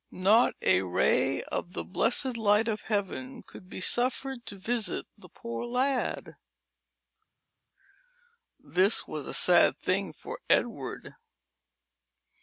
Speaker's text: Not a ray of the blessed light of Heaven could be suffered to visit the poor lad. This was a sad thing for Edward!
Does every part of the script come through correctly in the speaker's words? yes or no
yes